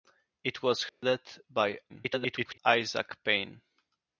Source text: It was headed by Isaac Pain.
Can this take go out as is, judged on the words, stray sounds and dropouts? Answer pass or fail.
fail